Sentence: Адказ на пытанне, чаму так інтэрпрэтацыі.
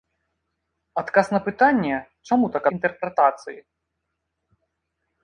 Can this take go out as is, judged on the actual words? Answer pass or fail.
pass